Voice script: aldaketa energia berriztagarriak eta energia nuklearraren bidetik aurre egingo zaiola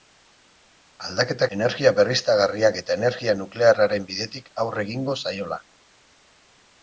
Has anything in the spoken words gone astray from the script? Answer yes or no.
no